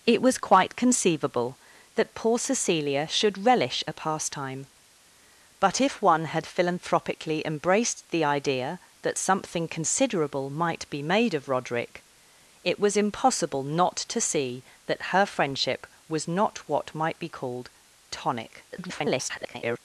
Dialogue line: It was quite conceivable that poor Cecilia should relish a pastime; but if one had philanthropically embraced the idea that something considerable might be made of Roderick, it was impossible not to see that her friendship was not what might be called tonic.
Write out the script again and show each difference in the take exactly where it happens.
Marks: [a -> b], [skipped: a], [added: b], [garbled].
It was quite conceivable that poor Cecilia should relish a pastime; but if one had philanthropically embraced the idea that something considerable might be made of Roderick, it was impossible not to see that her friendship was not what might be called tonic. [garbled]